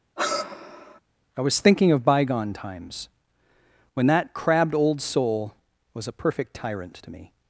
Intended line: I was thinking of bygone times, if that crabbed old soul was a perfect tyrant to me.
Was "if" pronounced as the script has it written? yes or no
no